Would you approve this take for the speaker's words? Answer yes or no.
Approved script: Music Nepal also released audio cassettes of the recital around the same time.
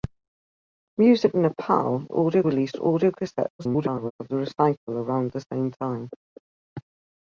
no